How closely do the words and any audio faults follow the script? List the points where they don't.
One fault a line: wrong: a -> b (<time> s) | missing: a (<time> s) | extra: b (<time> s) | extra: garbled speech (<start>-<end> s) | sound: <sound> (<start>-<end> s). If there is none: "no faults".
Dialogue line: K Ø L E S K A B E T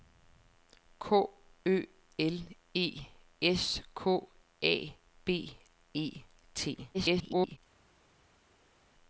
extra: garbled speech (6.9-7.6 s)